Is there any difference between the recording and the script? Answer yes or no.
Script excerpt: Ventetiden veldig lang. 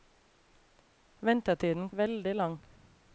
no